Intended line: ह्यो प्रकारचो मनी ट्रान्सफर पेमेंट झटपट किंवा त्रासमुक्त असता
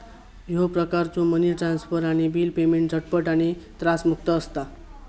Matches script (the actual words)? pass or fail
fail